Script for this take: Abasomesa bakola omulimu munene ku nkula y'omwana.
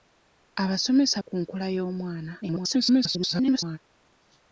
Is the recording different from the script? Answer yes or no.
yes